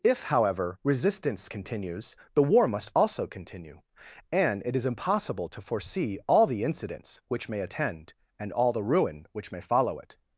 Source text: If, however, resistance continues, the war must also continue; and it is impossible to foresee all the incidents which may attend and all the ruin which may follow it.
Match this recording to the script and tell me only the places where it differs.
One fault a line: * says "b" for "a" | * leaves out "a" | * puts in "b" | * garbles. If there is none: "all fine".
all fine